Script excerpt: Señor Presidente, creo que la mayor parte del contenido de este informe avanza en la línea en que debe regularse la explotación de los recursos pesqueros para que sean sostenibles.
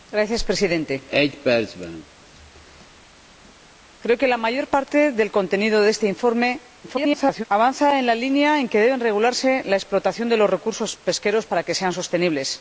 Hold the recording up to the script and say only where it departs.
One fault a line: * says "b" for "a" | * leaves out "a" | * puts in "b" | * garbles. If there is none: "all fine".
* garbles